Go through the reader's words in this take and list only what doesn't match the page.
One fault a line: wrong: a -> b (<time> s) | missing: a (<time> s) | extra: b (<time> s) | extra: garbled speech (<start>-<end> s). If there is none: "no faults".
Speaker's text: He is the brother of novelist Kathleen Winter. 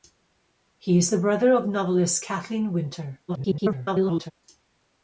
extra: garbled speech (3.3-4.3 s)